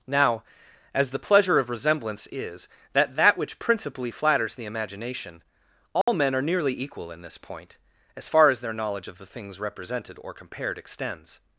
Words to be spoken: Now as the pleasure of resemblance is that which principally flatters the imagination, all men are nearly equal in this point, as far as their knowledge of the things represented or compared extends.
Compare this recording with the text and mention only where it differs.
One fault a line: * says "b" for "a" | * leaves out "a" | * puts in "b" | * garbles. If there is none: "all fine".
* puts in "that"